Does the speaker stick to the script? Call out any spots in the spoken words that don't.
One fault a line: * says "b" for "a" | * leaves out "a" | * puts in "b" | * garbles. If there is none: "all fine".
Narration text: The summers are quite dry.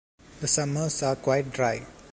all fine